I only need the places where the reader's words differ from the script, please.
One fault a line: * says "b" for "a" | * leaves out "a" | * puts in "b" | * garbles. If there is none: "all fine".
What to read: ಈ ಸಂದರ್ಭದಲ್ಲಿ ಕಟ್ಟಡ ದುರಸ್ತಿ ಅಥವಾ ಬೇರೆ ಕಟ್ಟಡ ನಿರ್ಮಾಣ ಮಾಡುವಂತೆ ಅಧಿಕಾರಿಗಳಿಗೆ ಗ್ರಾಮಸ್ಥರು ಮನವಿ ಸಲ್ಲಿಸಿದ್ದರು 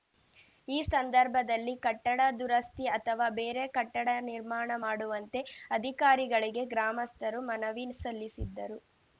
all fine